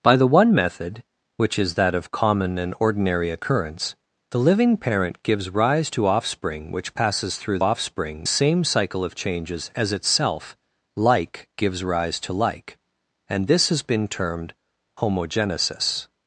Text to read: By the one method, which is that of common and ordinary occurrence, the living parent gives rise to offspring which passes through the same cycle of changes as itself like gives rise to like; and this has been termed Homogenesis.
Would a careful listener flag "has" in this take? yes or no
no